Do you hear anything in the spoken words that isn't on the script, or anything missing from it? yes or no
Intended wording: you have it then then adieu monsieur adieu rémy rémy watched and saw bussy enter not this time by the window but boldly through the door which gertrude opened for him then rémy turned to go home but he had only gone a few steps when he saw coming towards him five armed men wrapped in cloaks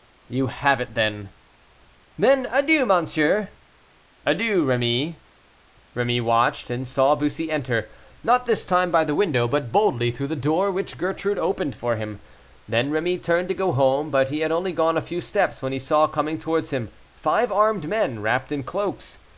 no